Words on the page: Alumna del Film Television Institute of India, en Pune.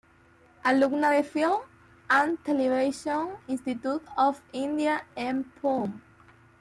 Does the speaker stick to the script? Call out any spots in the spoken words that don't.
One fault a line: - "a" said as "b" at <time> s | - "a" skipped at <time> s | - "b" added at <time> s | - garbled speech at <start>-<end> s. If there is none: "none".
- "and" added at 2.1 s